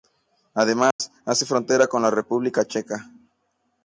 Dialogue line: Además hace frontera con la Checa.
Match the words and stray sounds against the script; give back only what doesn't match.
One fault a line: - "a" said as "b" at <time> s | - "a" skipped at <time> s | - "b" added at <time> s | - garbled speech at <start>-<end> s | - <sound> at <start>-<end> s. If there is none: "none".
- dropout at 0.9-1.0 s
- "República" added at 2.1 s